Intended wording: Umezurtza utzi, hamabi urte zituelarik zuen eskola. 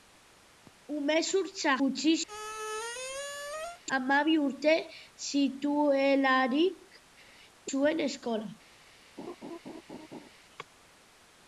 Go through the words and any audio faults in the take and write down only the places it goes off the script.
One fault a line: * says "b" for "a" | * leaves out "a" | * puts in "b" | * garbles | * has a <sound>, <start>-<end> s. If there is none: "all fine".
* has a squeak, 2.3-3.8 s
* has a laugh, 9.2-10.3 s